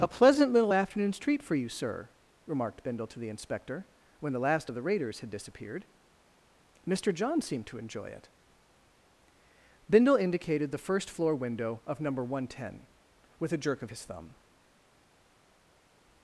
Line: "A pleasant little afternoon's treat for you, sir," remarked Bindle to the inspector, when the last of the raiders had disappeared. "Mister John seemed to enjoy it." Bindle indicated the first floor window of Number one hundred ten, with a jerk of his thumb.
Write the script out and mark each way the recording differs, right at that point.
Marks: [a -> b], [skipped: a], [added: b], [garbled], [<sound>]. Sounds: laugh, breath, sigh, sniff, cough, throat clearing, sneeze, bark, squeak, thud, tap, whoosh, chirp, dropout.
"A pleasant little afternoon's treat for you, sir," remarked Bindle to the inspector, when the last of the raiders had disappeared. "Mister John seemed to enjoy it." Bindle indicated the first floor window of Number one hundred ten, with a jerk of his thumb.